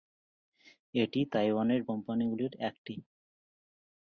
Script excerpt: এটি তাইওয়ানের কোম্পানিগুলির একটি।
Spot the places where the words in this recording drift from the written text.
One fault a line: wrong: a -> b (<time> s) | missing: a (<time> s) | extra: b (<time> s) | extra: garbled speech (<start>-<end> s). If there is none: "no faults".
no faults